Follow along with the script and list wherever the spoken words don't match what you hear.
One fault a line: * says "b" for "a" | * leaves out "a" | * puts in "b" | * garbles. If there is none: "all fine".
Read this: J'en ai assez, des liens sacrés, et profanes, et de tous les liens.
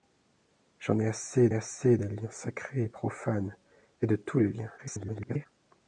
* puts in "assez"
* garbles